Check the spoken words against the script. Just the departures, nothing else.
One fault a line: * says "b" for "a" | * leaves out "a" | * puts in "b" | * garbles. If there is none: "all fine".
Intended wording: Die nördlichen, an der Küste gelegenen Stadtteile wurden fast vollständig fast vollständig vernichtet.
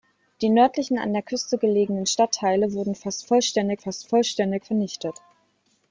all fine